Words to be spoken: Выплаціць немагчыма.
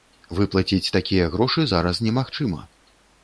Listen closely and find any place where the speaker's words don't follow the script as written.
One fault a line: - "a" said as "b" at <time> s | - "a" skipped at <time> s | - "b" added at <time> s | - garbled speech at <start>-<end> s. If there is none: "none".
- "такія грошы зараз" added at 1.0 s